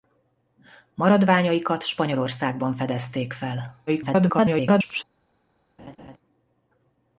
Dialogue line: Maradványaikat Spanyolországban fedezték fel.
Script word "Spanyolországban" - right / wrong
right